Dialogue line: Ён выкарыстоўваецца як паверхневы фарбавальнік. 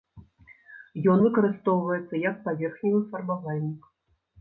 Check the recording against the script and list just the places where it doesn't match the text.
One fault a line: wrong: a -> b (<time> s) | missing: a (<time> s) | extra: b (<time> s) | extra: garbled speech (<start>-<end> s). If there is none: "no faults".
no faults